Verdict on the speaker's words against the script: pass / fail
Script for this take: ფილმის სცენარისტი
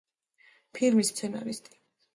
pass